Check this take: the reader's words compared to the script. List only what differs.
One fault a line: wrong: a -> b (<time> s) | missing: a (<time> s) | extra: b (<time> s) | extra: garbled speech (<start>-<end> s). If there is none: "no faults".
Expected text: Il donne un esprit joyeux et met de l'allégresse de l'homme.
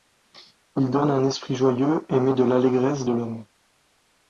no faults